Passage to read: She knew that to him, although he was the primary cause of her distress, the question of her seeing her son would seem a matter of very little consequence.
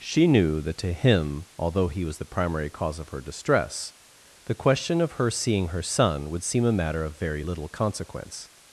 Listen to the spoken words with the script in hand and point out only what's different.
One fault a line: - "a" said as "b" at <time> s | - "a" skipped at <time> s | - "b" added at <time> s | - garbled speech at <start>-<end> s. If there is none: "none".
none